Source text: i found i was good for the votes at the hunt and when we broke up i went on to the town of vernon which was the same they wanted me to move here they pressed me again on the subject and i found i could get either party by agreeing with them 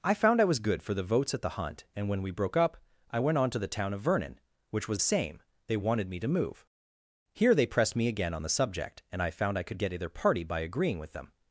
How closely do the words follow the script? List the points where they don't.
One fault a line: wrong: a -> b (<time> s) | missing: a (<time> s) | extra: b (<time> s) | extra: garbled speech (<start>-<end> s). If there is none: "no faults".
missing: the (5.0 s)